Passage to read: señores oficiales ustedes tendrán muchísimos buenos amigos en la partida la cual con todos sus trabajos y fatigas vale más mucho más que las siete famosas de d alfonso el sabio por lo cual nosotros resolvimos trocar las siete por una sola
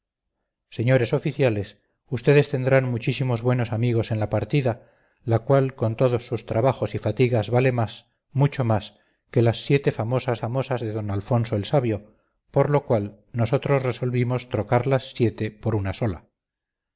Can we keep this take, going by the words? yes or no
no